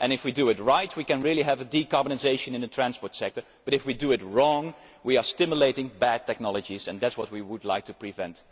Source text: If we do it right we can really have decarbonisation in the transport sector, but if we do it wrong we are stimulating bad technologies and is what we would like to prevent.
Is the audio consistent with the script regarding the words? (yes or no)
no